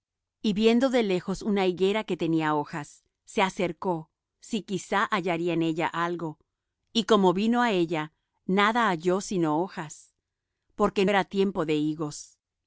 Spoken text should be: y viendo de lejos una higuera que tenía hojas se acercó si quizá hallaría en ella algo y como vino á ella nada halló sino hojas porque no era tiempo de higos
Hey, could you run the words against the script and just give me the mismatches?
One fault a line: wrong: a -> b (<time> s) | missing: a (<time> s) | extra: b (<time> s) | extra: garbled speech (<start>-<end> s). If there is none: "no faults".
missing: no (11.1 s)